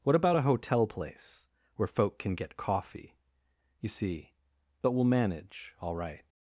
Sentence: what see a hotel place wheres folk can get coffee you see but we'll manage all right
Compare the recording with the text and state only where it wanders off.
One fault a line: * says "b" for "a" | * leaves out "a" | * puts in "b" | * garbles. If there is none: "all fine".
* says "about" for "see"
* says "where" for "wheres"